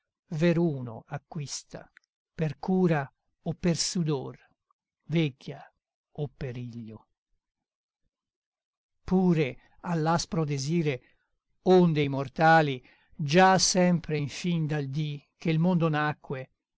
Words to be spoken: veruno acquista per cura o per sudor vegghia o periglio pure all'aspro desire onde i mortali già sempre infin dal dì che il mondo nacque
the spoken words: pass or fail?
pass